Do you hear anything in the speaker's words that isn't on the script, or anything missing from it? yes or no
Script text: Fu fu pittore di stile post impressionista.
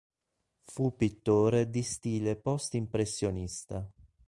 yes